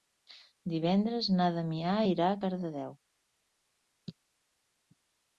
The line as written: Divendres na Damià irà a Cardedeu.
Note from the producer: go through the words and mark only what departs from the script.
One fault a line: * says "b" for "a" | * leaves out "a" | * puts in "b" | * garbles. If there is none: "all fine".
all fine